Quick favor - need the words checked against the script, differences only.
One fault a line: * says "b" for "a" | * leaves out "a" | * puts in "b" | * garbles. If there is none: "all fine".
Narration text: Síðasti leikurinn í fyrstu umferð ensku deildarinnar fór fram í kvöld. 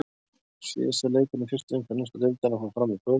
all fine